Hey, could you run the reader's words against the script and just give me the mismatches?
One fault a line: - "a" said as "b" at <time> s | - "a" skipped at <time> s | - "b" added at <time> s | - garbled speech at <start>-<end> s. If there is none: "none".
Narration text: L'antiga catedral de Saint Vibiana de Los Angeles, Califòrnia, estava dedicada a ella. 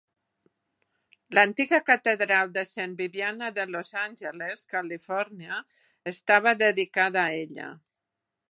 none